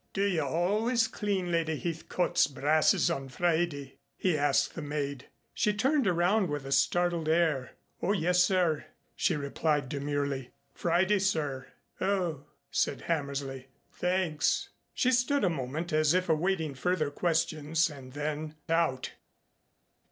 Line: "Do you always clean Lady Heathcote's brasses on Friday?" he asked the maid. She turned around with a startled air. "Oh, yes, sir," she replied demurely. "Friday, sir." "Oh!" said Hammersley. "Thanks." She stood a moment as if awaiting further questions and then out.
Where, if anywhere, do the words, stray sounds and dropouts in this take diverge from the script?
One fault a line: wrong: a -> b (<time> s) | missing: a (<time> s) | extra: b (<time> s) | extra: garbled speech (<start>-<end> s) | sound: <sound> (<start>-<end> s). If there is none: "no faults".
no faults